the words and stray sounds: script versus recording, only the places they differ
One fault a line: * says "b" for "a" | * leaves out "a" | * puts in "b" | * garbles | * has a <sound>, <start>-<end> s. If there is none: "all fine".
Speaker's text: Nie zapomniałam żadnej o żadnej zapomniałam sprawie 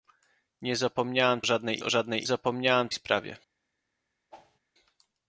* has a whoosh, 4.3-4.6 s